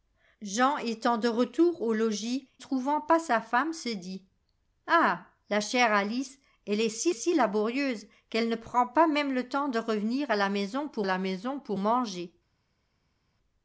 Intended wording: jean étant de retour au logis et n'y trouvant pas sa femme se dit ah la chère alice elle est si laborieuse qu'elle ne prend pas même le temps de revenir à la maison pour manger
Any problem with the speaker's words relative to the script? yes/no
yes